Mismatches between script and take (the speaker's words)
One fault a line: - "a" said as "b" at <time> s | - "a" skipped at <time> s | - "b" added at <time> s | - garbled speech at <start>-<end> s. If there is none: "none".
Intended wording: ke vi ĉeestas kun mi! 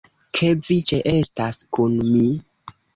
none